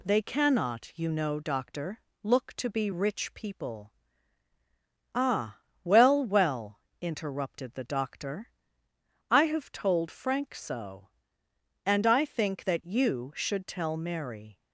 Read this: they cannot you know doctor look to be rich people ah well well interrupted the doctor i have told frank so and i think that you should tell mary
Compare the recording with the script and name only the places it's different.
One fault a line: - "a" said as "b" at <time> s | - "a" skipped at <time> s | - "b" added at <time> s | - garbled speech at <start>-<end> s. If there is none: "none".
none